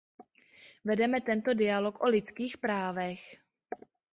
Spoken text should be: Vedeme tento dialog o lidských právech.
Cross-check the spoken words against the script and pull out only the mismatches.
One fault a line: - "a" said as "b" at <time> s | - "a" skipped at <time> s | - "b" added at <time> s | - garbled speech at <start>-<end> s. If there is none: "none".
none